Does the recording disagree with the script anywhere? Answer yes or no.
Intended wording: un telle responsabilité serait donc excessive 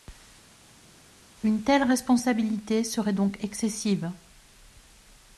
yes